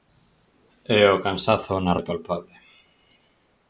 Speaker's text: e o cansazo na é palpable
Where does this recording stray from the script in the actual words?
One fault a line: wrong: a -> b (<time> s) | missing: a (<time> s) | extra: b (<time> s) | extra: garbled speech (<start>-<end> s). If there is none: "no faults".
no faults